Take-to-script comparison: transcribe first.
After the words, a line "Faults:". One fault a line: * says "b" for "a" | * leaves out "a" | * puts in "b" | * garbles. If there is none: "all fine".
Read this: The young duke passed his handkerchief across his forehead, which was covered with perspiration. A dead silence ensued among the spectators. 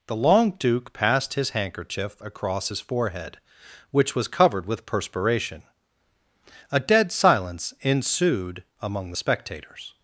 The long duke passed his handkerchief across his forehead, which was covered with perspiration. A dead silence ensued among the spectators.
Faults:
* says "long" for "young"